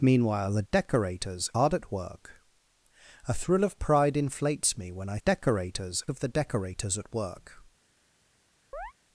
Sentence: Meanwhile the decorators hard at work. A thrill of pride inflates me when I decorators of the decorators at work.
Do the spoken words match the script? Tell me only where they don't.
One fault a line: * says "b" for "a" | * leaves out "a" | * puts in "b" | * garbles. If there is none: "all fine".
all fine